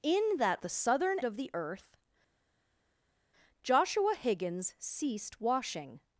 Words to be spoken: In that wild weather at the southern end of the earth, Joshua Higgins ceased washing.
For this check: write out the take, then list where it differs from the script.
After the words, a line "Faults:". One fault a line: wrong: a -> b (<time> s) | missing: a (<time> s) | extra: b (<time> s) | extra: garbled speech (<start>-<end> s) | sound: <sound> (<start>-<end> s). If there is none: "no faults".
In that the southern of the earth, Joshua Higgins ceased washing.
Faults:
missing: wild weather at (0.6 s)
missing: end (1.2 s)